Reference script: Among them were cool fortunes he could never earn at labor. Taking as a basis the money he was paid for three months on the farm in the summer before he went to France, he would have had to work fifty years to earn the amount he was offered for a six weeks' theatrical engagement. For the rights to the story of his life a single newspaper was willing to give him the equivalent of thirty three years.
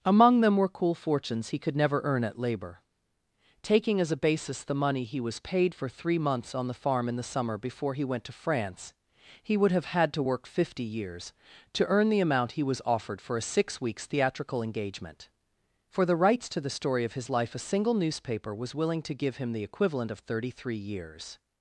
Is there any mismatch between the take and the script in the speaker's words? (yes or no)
no